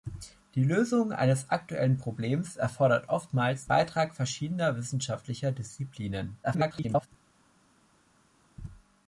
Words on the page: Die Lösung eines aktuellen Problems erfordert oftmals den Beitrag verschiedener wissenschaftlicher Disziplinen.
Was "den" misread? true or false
true